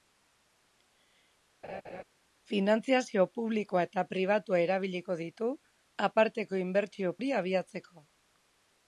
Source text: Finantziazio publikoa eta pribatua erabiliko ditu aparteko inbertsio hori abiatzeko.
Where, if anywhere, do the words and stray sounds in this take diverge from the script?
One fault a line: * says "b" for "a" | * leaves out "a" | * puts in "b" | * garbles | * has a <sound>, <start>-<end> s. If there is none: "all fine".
* has a laugh, 1.6-2.0 s